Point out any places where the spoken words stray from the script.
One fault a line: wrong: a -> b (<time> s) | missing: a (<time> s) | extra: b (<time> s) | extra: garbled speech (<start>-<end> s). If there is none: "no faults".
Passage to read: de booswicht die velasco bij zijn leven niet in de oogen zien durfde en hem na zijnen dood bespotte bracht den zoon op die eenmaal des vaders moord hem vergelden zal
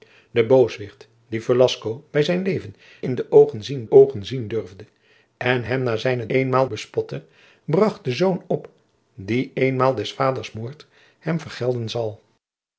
missing: niet (2.8 s)
extra: oogen zien (3.9 s)
wrong: dood -> eenmaal (6.3 s)